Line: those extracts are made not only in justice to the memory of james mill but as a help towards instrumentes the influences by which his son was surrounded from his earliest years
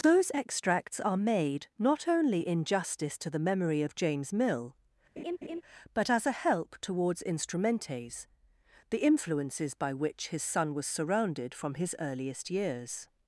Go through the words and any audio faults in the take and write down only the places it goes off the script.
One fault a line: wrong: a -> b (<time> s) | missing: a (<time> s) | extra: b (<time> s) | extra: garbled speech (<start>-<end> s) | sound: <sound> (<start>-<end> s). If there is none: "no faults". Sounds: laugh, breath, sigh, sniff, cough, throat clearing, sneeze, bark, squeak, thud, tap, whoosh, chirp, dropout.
sound: laugh (5.2-5.6 s)